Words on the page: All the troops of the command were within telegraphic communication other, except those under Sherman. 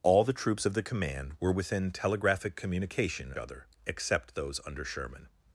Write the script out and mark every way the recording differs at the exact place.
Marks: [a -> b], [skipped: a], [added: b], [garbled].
All the troops of the command were within telegraphic communication other, except those under Sherman.